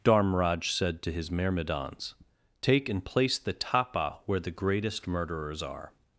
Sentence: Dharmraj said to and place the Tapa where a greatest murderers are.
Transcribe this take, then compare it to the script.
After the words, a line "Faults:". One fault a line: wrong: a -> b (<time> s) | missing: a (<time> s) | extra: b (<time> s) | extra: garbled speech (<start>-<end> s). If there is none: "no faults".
Dharmraj said to his myrmidons,' Take and place the Tapa where the greatest murderers are.
Faults:
extra: his myrmidons Take (1.1 s)
wrong: a -> the (4.4 s)